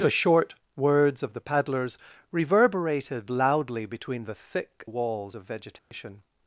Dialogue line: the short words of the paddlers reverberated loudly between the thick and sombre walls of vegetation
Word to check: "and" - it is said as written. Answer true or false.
false